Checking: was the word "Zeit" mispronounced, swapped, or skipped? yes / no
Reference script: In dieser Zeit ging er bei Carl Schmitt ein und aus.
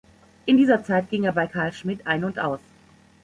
no